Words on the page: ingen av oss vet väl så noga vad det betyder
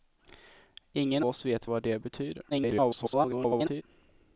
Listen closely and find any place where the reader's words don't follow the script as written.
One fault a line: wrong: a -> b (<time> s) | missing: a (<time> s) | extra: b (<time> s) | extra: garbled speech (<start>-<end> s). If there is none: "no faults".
missing: av (1.2 s)
missing: väl så noga (1.7 s)
extra: garbled speech (2.5-3.8 s)